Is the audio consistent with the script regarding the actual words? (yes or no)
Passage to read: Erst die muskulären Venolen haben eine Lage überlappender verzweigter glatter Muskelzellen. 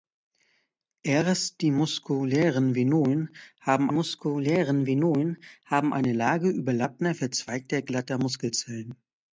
no